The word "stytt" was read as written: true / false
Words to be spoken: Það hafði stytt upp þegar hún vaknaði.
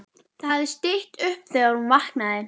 true